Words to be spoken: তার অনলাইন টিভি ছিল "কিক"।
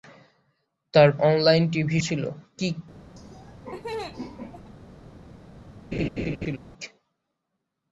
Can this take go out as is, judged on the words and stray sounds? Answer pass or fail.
fail